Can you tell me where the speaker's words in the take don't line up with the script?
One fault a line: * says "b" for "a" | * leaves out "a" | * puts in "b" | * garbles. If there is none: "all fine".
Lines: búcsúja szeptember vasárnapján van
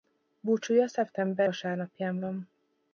all fine